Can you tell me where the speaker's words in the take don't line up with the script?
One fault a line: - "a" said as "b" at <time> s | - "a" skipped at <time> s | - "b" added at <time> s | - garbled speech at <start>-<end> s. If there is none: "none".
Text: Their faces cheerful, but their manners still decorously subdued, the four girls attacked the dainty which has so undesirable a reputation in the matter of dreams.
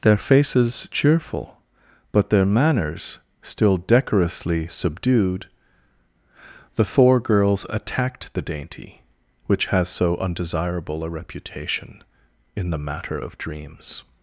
none